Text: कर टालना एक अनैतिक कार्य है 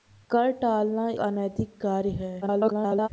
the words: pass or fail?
fail